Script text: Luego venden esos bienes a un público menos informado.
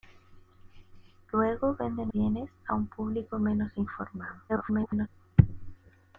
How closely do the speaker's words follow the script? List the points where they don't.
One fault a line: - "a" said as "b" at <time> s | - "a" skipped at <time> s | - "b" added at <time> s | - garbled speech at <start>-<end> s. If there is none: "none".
- "esos" skipped at 2.1 s
- garbled speech at 4.5-5.1 s